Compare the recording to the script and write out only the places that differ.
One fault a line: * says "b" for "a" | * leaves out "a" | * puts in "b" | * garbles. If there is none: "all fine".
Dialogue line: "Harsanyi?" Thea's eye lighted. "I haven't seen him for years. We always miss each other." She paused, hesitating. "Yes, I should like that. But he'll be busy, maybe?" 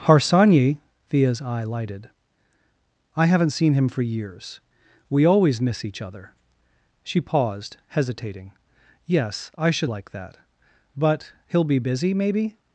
all fine